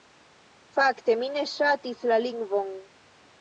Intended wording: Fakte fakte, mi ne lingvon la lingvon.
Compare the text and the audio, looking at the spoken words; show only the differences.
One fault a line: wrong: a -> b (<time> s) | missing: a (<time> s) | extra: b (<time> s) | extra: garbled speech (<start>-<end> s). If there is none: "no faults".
missing: fakte (1.1 s)
wrong: lingvon -> ŝatis (1.5 s)